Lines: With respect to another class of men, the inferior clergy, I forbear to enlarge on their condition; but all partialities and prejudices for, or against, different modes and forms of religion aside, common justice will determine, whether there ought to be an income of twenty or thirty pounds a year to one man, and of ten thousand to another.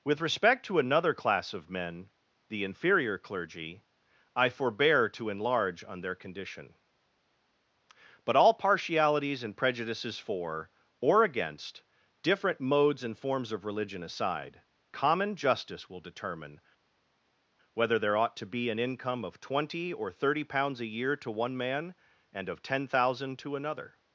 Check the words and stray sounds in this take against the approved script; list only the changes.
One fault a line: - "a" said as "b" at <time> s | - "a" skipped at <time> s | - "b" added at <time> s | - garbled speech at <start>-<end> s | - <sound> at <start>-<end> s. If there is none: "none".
none